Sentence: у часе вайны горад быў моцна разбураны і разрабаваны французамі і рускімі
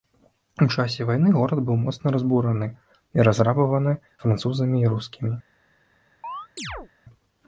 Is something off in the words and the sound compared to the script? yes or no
yes